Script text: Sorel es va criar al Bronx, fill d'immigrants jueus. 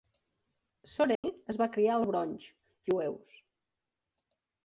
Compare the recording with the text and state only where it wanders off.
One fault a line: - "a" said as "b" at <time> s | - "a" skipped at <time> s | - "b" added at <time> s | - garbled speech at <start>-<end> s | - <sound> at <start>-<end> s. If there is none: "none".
- dropout at 1.1-1.2 s
- "fill d'immigrants" skipped at 2.5 s